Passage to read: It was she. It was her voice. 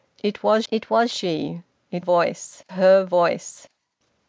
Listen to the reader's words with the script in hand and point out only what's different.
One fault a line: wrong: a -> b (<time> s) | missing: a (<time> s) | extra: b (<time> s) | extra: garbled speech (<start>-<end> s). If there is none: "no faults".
extra: it was (0.7 s)
wrong: was -> voice (2.0 s)